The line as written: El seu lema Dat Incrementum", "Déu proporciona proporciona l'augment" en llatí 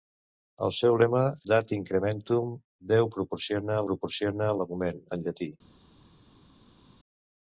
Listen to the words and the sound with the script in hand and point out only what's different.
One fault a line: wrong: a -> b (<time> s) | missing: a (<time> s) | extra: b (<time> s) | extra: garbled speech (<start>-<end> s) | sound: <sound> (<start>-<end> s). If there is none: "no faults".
no faults